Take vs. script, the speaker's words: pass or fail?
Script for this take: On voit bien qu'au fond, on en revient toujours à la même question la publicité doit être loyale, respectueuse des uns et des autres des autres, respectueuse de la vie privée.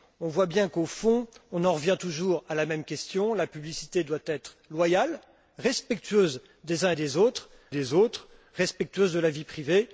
pass